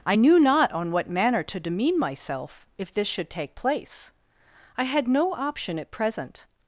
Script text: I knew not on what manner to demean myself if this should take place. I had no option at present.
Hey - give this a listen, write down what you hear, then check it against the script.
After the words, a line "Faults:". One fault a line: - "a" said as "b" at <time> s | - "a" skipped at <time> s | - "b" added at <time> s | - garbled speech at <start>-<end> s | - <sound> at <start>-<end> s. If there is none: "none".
I knew not on what manner to demean myself if this should take place. I had no option at present.
Faults:
none